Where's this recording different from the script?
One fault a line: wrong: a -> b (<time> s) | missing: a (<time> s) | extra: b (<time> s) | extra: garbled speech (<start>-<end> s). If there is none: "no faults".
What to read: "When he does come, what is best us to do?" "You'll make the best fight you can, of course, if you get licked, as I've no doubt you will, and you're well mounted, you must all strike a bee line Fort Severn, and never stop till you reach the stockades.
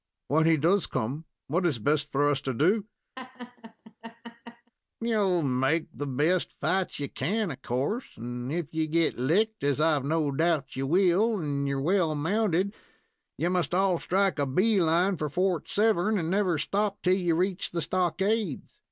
extra: for (2.1 s)
extra: and (8.2 s)
extra: for (15.2 s)